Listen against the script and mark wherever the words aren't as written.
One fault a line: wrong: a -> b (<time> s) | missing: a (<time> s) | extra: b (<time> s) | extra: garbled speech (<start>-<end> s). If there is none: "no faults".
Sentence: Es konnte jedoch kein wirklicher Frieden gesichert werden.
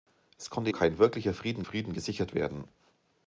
missing: jedoch (0.7 s)
extra: Frieden (1.6 s)